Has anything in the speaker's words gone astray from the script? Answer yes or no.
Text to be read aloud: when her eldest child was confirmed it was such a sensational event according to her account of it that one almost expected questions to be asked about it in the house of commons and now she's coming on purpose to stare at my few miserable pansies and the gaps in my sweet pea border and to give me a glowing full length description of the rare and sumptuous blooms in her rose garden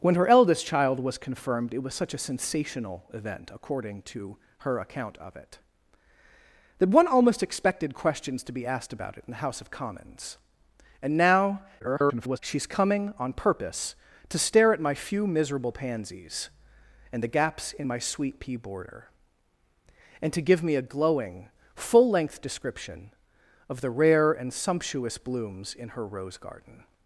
yes